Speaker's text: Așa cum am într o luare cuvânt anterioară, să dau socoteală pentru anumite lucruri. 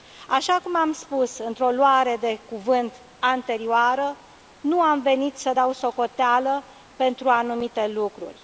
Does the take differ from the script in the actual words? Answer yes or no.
yes